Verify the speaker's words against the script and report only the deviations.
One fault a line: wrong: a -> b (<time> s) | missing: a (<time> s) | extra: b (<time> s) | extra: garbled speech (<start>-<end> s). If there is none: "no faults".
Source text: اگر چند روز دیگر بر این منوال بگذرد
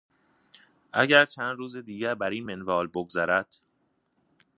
no faults